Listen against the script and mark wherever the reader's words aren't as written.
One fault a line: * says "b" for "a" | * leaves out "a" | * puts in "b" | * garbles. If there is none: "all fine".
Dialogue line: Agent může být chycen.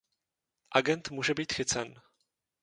all fine